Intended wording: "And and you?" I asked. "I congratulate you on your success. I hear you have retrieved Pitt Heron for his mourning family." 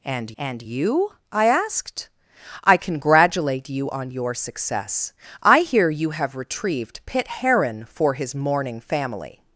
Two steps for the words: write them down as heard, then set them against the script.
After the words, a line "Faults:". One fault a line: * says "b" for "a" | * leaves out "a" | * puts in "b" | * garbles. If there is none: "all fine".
"And and you?" I asked. "I congratulate you on your success. I hear you have retrieved Pitt Heron for his mourning family."
Faults:
all fine